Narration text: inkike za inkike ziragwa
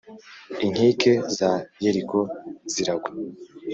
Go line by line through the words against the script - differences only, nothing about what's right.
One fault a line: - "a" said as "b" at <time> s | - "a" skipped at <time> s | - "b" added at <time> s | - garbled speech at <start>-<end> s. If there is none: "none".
- "inkike" said as "yeriko" at 1.8 s